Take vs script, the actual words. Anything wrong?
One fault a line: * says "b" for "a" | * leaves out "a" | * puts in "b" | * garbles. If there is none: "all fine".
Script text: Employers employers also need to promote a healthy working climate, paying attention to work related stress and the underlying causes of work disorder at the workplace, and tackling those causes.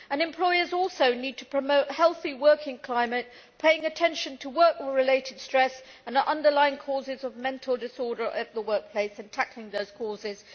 * leaves out "employers"
* says "mental" for "work"